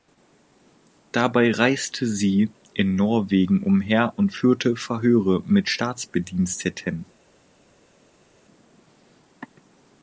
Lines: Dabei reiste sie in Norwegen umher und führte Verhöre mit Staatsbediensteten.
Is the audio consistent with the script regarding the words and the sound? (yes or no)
yes